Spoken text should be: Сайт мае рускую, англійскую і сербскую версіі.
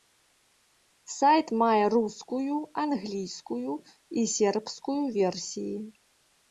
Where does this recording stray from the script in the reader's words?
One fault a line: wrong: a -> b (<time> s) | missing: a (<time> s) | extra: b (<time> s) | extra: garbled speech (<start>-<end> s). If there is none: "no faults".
no faults